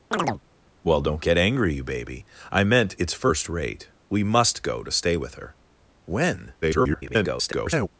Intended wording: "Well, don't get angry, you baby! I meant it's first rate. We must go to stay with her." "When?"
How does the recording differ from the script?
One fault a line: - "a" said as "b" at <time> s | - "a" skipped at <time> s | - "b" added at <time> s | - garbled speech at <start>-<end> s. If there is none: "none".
- garbled speech at 6.6-7.9 s